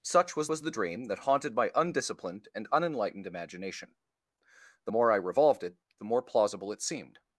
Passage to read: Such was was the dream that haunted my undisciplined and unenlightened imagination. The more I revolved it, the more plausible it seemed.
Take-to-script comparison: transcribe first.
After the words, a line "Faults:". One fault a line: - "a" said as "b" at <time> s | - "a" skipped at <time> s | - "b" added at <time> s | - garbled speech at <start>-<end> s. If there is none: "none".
Such was was the dream that haunted my undisciplined and unenlightened imagination. The more I revolved it, the more plausible it seemed.
Faults:
none